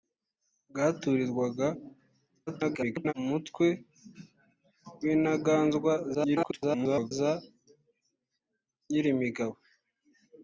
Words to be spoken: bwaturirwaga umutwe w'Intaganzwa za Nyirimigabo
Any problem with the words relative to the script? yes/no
yes